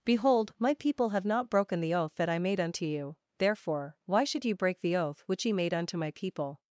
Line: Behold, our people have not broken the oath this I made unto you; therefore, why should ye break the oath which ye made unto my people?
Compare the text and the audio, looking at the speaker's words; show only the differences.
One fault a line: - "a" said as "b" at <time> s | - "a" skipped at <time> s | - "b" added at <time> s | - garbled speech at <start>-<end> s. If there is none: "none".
- "our" said as "my" at 0.6 s
- "this" said as "that" at 2.1 s